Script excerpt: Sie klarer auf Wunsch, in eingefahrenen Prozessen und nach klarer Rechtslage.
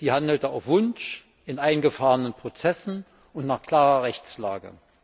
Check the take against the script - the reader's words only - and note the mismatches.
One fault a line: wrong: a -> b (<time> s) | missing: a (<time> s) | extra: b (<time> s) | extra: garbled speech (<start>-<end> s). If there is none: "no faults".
wrong: klarer -> handelte (0.1 s)